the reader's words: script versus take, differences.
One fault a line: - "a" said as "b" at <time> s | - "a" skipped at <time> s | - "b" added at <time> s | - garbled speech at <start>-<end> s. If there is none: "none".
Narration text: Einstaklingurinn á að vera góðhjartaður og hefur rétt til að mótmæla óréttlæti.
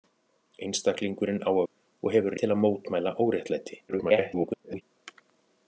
- "vera góðhjartaður" skipped at 1.6 s
- "rétt" skipped at 2.4 s
- garbled speech at 3.9-4.8 s